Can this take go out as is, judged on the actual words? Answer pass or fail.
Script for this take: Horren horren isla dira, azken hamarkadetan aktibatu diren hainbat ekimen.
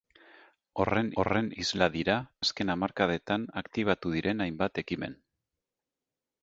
pass